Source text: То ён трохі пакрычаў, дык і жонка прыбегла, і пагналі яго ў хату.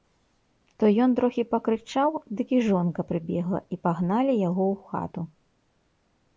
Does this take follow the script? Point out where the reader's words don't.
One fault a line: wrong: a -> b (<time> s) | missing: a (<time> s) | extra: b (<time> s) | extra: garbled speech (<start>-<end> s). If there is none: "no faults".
no faults